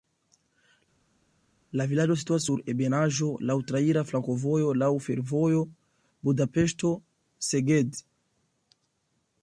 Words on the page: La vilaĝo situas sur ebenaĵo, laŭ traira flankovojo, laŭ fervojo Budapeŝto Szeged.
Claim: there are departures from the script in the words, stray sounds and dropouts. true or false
false